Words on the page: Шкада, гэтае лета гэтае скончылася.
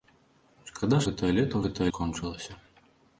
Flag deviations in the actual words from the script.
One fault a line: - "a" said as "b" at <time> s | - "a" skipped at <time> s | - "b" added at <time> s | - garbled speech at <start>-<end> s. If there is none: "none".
none